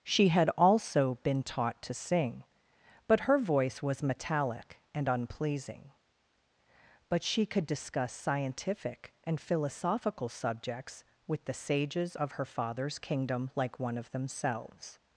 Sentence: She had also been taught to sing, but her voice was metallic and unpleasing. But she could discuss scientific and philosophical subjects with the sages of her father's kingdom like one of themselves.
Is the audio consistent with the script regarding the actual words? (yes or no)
yes